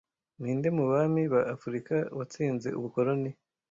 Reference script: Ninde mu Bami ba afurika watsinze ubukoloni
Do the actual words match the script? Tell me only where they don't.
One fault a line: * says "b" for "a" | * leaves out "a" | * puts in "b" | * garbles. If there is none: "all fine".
all fine